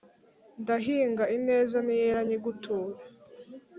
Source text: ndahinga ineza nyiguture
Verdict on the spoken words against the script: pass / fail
fail